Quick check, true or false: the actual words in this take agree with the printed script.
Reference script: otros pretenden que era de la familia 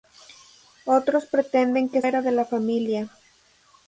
true